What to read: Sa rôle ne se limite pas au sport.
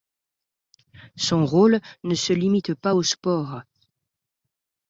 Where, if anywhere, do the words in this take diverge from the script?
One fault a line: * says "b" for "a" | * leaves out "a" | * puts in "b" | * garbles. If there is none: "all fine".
* says "Son" for "Sa"